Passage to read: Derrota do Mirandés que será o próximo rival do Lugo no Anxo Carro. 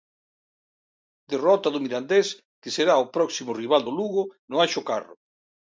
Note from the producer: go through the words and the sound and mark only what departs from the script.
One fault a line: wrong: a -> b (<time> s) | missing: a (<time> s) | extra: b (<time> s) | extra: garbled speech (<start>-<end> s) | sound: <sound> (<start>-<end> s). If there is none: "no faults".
no faults